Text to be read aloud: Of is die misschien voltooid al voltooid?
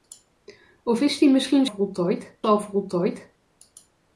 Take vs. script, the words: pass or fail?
pass